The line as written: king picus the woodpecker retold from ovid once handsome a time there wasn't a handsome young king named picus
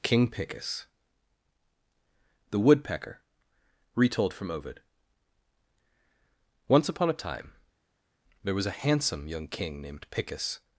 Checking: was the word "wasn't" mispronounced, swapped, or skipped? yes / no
yes